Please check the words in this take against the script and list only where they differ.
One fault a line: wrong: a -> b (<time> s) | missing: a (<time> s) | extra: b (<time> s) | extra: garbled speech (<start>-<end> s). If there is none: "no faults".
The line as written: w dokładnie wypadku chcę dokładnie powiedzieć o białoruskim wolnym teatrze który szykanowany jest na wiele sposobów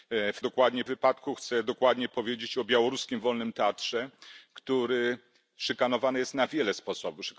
no faults